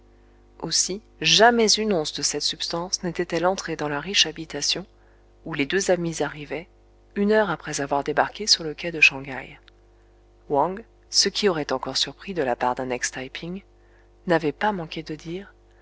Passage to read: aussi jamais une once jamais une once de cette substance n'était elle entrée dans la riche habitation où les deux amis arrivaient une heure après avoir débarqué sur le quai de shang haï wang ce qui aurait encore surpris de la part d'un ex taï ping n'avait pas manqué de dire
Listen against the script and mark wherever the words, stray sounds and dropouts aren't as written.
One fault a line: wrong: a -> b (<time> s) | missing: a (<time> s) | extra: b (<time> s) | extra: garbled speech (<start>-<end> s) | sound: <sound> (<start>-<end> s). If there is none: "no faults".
missing: jamais une once (2.1 s)